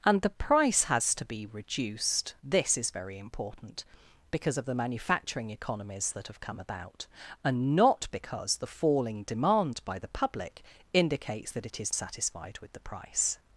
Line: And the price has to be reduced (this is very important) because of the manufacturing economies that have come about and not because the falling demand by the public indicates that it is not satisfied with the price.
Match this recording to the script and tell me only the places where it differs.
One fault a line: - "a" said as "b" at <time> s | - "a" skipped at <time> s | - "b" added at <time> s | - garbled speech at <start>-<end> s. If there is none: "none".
- "not" skipped at 11.9 s